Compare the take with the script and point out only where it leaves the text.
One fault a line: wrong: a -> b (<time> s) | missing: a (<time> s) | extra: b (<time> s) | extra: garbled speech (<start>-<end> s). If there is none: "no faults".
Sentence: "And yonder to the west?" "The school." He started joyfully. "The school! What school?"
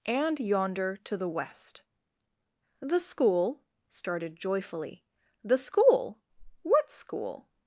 missing: He (3.6 s)